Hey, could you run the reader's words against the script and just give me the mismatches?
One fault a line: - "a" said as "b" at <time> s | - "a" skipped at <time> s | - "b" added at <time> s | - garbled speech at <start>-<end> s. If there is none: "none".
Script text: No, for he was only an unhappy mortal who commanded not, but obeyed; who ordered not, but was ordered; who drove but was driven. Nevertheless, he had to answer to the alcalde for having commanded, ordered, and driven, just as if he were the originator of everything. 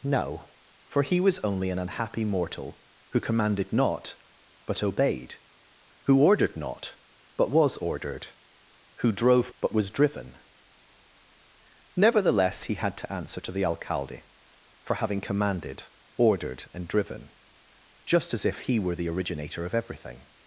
none